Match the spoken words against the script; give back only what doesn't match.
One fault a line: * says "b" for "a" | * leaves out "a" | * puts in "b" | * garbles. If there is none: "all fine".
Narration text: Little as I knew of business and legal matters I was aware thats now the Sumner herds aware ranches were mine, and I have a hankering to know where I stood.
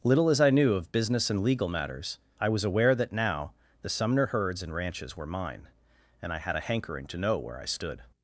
* says "that" for "thats"
* says "and" for "aware"
* says "had" for "have"